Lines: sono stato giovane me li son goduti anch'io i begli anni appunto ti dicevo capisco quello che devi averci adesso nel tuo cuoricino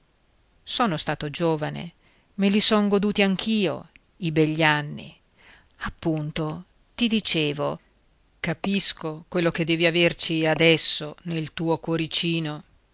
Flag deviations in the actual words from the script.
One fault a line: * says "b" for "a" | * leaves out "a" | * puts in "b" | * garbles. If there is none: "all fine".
all fine